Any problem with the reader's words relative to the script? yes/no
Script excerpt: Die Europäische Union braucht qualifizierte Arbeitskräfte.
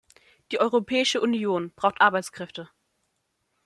yes